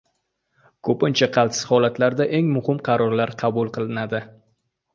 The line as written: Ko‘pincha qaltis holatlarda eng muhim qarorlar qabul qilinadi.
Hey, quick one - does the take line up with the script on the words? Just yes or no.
yes